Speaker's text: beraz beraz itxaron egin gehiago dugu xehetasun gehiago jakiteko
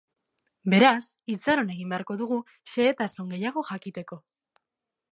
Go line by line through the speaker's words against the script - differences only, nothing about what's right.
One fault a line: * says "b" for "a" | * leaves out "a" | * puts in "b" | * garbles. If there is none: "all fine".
* leaves out "beraz"
* says "beharko" for "gehiago"